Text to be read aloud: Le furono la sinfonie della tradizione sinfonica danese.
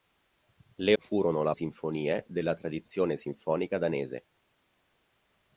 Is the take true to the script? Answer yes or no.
yes